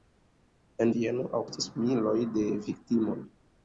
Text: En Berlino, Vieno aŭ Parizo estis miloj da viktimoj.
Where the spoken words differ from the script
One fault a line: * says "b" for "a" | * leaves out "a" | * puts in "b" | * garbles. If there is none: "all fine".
* leaves out "Berlino"
* leaves out "Parizo"